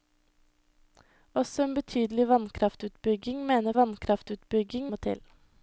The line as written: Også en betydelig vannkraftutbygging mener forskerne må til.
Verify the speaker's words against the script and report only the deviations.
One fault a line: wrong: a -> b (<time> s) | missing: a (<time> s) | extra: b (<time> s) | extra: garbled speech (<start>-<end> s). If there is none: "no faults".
wrong: forskerne -> vannkraftutbygging (3.8 s)